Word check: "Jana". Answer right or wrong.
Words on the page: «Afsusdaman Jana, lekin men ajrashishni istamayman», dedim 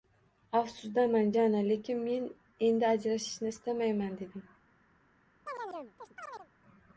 right